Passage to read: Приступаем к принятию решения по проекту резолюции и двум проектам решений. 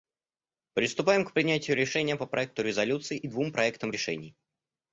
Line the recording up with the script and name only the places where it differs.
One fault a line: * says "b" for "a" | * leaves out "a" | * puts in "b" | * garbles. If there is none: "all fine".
all fine